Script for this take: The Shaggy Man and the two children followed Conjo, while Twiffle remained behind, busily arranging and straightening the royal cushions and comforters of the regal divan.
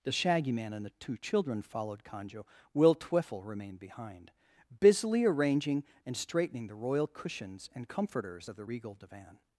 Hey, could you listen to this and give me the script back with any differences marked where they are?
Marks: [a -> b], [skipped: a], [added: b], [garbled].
The Shaggy Man and the two children followed Conjo, [while -> will] Twiffle remained behind, busily arranging and straightening the royal cushions and comforters of the regal divan.